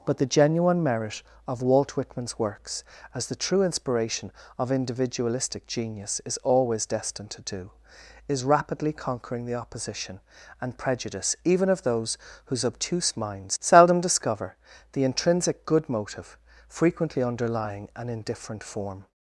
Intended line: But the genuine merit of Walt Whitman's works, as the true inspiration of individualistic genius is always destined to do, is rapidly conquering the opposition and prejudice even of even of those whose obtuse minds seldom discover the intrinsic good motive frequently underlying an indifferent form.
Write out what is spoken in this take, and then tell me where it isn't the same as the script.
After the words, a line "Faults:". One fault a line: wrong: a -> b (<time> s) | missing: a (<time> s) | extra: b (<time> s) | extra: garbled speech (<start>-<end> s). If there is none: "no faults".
But the genuine merit of Walt Whitman's works, as the true inspiration of individualistic genius is always destined to do, is rapidly conquering the opposition and prejudice even of those whose obtuse minds seldom discover the intrinsic good motive frequently underlying an indifferent form.
Faults:
missing: even of (11.8 s)